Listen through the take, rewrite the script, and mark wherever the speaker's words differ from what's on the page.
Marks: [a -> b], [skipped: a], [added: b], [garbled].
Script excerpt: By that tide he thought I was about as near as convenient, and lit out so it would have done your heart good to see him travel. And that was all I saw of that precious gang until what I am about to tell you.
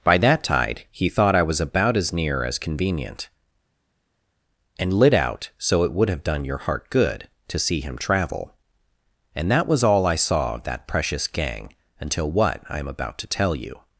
By that tide he thought I was about as near as convenient, and lit out so it would have done your heart good to see him travel. And that was all I saw of that precious gang until what I am about to tell you.